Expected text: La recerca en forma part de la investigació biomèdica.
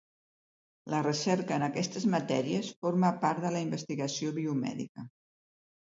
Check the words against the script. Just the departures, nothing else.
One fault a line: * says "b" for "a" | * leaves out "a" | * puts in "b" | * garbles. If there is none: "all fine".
* puts in "aquestes matèries"